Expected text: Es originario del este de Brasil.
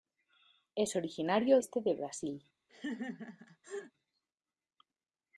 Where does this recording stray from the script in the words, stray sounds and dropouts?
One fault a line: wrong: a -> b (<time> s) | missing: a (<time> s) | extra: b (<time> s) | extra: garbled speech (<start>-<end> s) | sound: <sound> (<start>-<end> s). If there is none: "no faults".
missing: del (1.6 s)
sound: laugh (2.7-3.9 s)